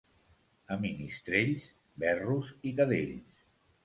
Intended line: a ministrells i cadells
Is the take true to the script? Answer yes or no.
no